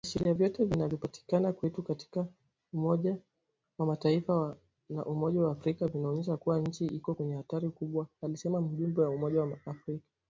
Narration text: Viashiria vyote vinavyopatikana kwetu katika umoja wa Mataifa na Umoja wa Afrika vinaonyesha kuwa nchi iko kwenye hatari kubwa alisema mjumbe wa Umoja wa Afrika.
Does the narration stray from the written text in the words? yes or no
no